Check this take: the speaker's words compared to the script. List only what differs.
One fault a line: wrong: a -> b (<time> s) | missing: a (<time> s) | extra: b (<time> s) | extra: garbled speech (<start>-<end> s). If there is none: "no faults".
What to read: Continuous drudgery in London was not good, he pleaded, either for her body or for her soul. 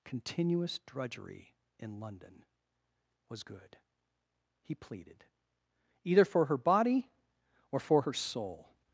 missing: not (3.4 s)